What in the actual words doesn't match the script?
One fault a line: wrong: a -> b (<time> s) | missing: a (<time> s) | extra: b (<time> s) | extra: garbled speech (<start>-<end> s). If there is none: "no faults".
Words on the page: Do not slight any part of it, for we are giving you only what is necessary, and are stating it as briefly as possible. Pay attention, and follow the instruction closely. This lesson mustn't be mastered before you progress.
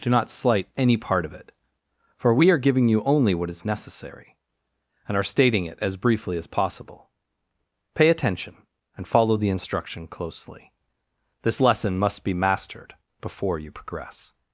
wrong: mustn't -> must (12.0 s)